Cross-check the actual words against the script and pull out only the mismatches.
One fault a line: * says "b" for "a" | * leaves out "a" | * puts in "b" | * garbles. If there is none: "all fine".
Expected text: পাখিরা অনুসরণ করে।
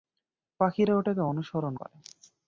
* puts in "ওটাকে"